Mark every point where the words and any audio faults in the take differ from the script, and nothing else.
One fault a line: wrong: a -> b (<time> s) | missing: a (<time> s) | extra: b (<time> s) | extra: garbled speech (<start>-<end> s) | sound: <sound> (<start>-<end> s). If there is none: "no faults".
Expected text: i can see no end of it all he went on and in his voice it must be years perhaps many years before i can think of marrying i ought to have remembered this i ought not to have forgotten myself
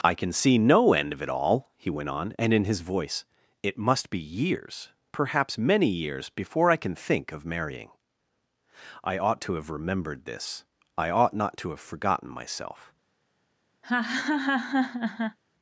sound: laugh (13.8-15.4 s)